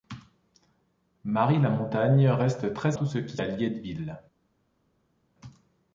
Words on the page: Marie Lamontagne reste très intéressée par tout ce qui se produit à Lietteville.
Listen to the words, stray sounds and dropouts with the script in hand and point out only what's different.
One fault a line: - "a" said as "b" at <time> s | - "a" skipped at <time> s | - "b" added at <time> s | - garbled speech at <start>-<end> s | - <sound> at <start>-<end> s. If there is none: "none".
- "intéressée par" skipped at 3.0 s
- "se produit" skipped at 3.4 s